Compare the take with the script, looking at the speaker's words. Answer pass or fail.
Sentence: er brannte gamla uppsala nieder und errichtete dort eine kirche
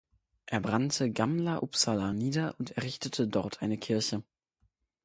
pass